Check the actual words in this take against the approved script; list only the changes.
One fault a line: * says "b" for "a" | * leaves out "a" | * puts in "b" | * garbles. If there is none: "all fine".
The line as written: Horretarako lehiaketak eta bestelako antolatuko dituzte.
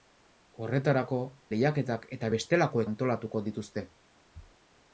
all fine